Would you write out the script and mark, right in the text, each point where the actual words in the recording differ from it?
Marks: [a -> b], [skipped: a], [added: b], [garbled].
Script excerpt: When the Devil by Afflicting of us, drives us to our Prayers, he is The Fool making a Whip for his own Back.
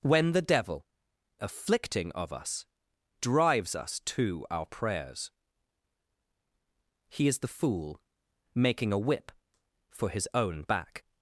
When the Devil [skipped: by] Afflicting of us, drives us to our Prayers, he is The Fool making a Whip for his own Back.